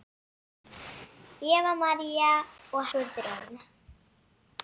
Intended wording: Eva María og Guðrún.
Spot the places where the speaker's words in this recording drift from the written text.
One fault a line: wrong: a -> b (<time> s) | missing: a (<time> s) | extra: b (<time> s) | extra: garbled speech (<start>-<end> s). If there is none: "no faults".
no faults